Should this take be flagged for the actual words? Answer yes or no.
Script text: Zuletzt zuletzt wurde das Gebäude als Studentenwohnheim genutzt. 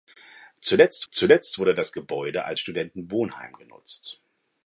no